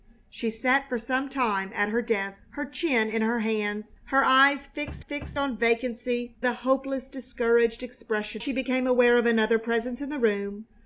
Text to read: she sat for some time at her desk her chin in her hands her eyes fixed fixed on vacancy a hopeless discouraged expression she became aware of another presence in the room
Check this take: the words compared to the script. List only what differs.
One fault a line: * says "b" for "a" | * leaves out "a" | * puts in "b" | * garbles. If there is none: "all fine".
all fine